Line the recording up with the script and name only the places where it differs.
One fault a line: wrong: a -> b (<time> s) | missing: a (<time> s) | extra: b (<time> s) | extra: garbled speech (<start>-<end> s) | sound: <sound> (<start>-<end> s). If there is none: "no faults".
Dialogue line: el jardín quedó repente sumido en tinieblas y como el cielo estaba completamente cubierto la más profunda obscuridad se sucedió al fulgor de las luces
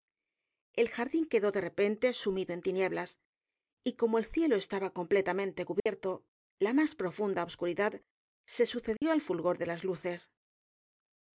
extra: de (1.5 s)
sound: dropout (5.8-5.9 s)
sound: dropout (9.0-9.0 s)